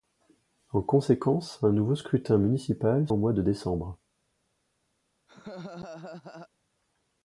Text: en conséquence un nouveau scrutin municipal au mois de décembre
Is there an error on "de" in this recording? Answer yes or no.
no